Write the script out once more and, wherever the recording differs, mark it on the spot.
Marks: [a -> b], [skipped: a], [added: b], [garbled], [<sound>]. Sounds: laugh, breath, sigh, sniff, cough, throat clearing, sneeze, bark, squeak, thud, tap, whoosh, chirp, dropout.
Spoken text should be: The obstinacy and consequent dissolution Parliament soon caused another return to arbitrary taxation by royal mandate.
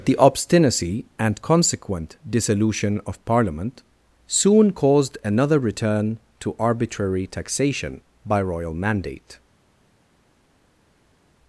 The obstinacy and consequent dissolution [added: of] Parliament soon caused another return to arbitrary taxation by royal mandate.